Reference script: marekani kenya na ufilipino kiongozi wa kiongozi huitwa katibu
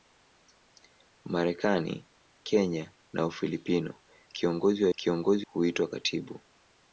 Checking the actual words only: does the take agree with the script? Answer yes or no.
yes